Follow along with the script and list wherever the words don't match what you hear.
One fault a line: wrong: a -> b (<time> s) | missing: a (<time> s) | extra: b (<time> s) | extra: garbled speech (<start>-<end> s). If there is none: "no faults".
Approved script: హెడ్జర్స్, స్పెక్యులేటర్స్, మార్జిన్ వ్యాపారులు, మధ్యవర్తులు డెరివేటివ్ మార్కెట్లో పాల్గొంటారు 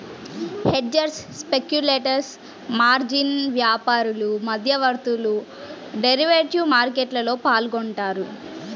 no faults